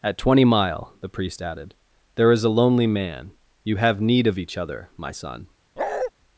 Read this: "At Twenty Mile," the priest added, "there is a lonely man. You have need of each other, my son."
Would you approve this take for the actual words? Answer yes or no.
yes